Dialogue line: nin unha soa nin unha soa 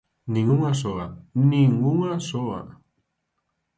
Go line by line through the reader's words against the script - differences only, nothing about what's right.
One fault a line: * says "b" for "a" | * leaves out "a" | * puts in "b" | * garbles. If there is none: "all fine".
all fine